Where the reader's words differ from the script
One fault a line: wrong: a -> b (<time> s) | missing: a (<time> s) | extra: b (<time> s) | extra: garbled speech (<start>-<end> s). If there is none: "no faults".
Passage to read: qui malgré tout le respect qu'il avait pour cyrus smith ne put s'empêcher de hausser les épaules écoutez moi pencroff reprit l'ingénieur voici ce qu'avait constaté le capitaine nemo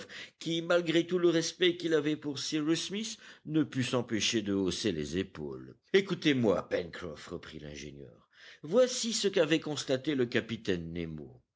no faults